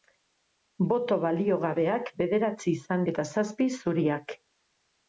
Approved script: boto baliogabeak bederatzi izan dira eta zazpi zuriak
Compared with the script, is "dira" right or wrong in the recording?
wrong